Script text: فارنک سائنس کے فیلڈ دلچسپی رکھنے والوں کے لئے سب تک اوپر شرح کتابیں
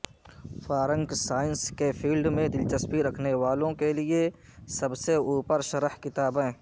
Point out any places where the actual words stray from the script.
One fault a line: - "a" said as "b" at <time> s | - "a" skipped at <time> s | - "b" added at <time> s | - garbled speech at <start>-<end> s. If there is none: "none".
- "میں" added at 2.4 s
- "تک" said as "سے" at 5.0 s